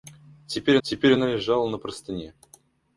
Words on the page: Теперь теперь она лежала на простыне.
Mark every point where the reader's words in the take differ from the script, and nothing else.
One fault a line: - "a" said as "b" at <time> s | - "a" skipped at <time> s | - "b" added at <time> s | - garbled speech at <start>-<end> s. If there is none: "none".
none